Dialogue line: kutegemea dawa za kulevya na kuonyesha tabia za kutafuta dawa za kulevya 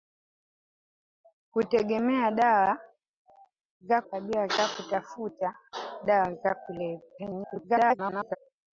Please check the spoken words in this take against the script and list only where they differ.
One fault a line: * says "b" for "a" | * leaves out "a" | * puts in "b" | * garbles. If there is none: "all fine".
* leaves out "kulevya na kuonyesha"
* garbles